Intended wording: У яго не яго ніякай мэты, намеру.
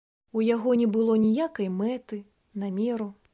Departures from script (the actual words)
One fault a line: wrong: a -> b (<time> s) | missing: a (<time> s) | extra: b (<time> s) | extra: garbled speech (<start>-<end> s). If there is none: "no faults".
wrong: яго -> было (1.0 s)